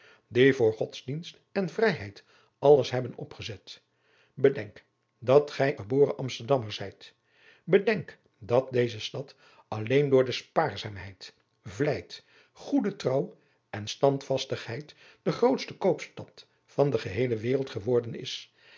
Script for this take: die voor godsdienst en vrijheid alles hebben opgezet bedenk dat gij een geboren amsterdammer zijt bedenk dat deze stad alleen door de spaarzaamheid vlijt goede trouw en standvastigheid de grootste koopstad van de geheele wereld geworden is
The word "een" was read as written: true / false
false